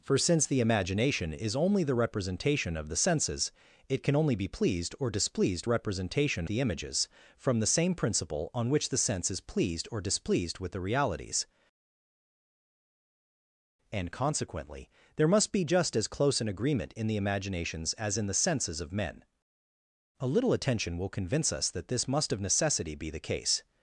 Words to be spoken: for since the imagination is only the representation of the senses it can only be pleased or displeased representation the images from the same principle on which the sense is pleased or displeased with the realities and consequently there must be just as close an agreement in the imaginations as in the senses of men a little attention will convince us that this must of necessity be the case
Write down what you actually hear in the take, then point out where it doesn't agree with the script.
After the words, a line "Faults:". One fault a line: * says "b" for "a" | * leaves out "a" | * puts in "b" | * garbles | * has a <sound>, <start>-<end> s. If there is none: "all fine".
for since the imagination is only the representation of the senses it can only be pleased or displeased representation the images from the same principle on which the sense is pleased or displeased with the realities and consequently there must be just as close an agreement in the imaginations as in the senses of men a little attention will convince us that this must of necessity be the case
Faults:
all fine